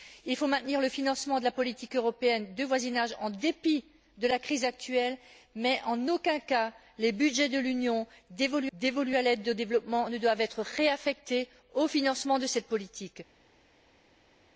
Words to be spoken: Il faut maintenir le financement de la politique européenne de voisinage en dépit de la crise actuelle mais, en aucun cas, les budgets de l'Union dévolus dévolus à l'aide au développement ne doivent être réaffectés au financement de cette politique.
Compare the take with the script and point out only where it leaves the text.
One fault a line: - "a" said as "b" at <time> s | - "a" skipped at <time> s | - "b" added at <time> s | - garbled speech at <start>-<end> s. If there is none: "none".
none